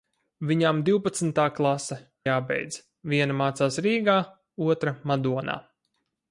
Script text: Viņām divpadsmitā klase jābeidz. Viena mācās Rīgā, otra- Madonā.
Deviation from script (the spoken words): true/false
false